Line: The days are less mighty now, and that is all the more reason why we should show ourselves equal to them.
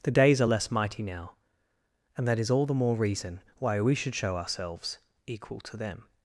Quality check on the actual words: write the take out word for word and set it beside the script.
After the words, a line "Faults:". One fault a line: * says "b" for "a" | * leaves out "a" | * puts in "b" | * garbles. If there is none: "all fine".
The days are less mighty now, and that is all the more reason why we should show ourselves equal to them.
Faults:
all fine